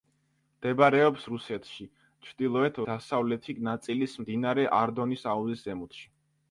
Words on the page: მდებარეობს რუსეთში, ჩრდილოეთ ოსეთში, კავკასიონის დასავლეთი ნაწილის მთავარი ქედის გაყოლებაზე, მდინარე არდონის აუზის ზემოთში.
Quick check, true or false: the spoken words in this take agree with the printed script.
false